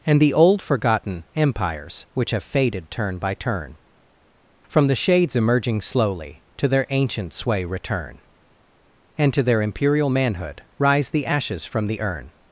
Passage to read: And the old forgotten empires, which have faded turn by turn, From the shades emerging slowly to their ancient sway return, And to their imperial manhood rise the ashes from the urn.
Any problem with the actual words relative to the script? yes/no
no